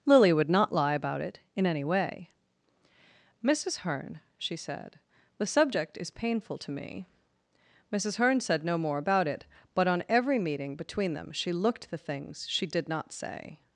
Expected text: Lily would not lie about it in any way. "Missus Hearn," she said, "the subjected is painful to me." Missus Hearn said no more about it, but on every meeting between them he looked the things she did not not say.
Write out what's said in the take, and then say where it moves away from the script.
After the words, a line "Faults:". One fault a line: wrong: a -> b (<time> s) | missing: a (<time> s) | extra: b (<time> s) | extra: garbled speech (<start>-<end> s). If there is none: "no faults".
Lily would not lie about it in any way. "Missus Hearn," she said, "the subject is painful to me." Missus Hearn said no more about it, but on every meeting between them she looked the things she did not say.
Faults:
wrong: subjected -> subject (5.5 s)
wrong: he -> she (11.3 s)
missing: not (13.1 s)